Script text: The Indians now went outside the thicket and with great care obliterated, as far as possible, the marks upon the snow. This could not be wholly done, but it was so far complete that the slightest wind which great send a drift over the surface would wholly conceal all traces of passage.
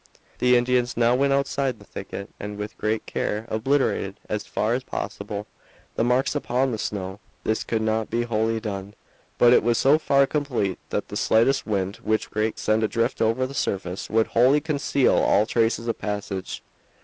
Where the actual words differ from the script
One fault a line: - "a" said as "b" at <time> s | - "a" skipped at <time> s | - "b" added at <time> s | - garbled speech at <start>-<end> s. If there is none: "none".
none